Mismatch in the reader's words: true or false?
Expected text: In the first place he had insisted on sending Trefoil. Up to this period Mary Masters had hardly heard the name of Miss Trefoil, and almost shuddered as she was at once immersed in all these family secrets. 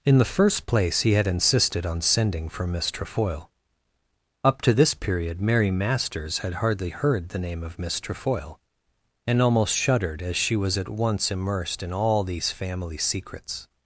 true